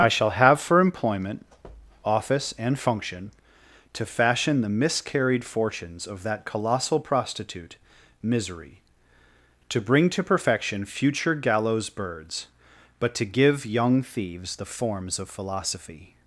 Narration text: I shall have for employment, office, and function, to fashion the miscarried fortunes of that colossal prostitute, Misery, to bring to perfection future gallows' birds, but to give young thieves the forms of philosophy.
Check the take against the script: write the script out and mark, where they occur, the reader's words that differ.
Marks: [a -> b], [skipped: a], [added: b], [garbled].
I shall have for employment, office, and function, to fashion the miscarried fortunes of that colossal prostitute, Misery, to bring to perfection future gallows' birds, but to give young thieves the forms of philosophy.